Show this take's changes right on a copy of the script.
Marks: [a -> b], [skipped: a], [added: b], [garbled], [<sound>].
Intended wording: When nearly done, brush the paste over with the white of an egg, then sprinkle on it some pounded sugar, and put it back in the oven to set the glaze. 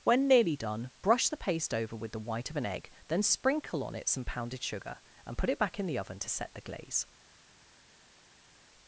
When nearly done, brush the paste over with the white of an egg, then sprinkle on it some pounded sugar, and put it back in the oven to set the glaze.